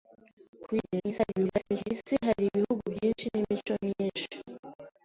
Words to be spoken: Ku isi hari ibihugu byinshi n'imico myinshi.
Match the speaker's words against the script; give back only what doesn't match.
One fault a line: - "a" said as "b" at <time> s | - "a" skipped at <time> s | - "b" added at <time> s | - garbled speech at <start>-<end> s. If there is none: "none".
- garbled speech at 0.8-1.9 s